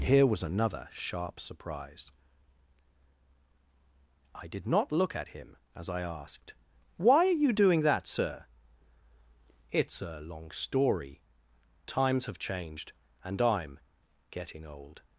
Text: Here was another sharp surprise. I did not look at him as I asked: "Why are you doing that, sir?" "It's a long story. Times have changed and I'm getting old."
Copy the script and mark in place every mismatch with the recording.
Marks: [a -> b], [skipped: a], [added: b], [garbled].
Here was another sharp surprise. I did not look at him as I asked: "Why are you doing that, sir?" "It's a long story. Times have changed and I'm getting old."